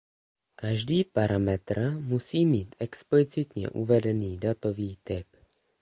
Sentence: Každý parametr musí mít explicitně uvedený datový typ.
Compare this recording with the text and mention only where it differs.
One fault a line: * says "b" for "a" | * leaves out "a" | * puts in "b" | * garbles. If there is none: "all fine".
all fine